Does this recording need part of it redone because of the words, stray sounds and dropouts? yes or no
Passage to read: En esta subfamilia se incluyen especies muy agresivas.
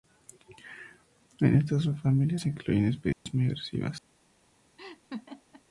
yes